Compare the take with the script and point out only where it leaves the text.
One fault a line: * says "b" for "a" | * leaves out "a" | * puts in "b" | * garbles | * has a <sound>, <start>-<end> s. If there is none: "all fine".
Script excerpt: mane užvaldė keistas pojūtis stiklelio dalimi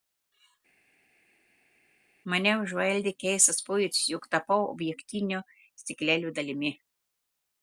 * puts in "jog tapau objektinio"